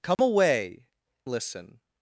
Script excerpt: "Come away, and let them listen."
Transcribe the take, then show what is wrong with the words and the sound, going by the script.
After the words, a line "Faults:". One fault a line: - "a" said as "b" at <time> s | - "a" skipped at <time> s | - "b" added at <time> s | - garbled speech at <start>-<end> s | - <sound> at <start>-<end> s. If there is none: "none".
"Come away, listen."
Faults:
- dropout at 0.1-0.2 s
- "and let them" skipped at 0.9 s